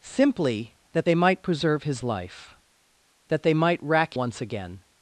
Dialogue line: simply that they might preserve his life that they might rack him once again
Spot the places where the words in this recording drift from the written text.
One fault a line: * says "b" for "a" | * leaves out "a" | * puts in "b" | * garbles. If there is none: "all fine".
* leaves out "him"